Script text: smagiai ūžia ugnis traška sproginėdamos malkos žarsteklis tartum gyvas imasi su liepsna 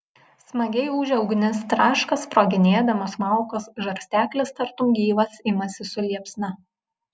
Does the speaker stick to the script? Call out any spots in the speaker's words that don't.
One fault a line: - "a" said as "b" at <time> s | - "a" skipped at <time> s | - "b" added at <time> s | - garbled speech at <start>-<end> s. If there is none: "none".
none